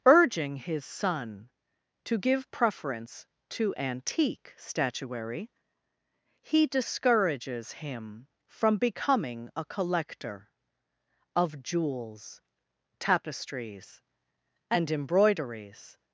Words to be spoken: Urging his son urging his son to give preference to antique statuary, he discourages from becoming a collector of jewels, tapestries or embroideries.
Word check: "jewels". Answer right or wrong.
right